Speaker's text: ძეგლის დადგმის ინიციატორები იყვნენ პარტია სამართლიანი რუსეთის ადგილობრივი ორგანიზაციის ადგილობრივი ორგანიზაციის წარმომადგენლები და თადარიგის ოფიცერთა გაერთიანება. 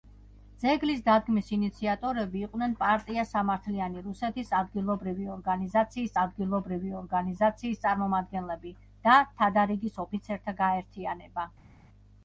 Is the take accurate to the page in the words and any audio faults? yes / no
yes